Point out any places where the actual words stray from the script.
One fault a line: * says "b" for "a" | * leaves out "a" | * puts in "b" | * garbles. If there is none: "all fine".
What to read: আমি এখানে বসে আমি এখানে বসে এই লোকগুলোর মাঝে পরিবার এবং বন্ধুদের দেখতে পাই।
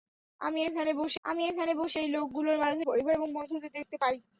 all fine